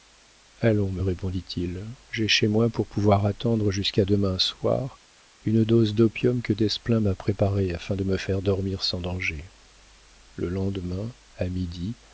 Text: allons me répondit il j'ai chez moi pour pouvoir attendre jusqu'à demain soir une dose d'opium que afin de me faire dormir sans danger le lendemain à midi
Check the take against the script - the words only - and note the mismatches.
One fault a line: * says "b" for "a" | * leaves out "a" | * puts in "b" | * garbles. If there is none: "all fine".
* puts in "desplein m'a préparée"